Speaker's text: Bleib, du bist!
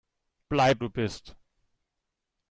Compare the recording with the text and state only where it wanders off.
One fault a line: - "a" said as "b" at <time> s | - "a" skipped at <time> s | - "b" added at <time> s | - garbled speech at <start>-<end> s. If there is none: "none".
none